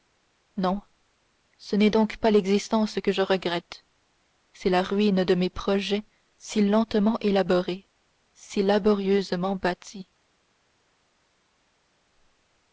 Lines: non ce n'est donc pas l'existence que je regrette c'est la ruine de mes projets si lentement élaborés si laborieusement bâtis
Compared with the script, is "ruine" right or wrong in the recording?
right